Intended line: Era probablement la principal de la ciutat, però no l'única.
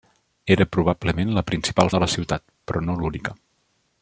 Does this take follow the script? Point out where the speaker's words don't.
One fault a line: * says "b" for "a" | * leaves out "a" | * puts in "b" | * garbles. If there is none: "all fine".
all fine